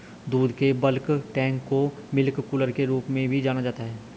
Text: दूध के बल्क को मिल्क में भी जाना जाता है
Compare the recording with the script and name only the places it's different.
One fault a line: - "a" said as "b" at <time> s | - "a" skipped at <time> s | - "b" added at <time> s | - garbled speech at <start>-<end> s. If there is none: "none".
- "टैंक" added at 1.4 s
- "कूलर के रूप" added at 2.4 s